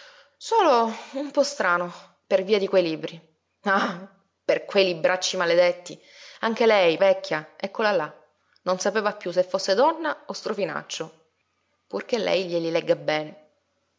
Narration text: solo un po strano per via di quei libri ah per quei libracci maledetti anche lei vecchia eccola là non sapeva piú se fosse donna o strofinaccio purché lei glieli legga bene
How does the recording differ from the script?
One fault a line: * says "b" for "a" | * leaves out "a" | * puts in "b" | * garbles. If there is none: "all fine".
all fine